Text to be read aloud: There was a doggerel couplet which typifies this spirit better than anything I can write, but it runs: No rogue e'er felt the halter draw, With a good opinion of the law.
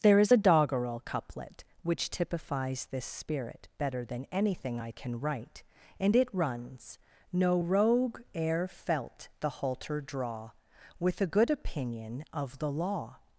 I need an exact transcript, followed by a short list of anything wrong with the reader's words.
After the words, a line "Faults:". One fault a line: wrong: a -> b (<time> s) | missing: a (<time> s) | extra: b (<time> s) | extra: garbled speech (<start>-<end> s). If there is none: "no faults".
There is a doggerel couplet which typifies this spirit better than anything I can write, and it runs: No rogue e'er felt the halter draw, With a good opinion of the law.
Faults:
wrong: was -> is (0.2 s)
wrong: but -> and (6.0 s)